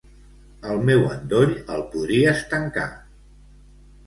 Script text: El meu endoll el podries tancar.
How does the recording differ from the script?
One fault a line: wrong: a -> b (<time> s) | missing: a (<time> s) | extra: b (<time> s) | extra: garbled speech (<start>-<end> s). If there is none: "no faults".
no faults